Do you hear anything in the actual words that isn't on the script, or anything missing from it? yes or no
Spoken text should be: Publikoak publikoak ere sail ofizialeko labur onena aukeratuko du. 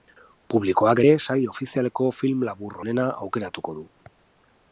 yes